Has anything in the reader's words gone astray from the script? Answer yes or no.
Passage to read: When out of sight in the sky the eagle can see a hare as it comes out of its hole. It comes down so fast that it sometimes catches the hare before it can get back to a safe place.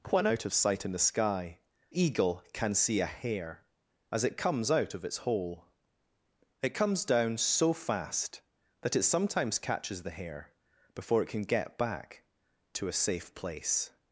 yes